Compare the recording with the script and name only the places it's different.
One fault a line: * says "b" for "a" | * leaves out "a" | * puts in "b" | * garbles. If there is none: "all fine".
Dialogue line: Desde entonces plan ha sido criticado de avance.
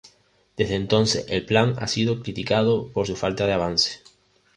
* puts in "el"
* puts in "por su falta"